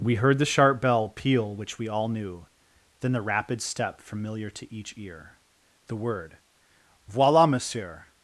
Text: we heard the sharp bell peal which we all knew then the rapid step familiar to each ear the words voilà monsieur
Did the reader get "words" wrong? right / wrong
wrong